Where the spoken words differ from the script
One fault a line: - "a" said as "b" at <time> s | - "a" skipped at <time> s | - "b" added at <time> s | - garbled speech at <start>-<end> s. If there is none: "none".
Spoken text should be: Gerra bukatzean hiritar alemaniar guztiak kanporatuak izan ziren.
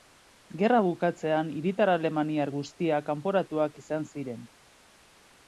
none